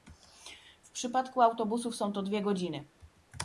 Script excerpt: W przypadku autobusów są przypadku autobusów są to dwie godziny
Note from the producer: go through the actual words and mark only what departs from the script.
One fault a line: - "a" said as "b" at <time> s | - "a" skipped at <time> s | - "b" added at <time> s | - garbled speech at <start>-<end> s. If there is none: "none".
- "przypadku autobusów są" skipped at 2.1 s